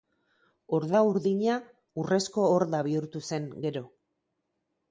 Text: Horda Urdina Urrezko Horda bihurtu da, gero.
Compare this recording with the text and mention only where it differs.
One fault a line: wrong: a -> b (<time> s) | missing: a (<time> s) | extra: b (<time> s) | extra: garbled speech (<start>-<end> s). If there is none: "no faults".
wrong: da -> zen (3.3 s)